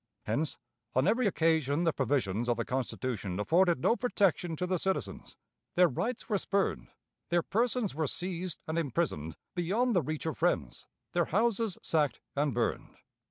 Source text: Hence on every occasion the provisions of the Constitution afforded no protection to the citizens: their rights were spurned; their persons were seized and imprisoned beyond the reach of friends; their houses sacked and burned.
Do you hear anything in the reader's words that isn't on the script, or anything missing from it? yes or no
no